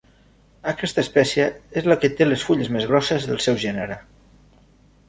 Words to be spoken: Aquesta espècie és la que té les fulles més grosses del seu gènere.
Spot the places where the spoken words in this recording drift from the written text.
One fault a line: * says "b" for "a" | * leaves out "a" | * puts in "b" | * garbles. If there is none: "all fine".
all fine